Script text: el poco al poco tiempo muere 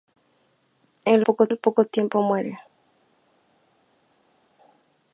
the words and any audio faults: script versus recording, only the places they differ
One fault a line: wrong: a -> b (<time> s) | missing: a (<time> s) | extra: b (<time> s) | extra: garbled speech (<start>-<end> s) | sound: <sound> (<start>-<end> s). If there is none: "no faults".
no faults